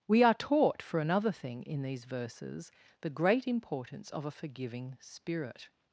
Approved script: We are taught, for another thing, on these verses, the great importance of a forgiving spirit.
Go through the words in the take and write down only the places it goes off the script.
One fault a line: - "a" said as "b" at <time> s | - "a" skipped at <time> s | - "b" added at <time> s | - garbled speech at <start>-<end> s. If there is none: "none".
- "on" said as "in" at 1.6 s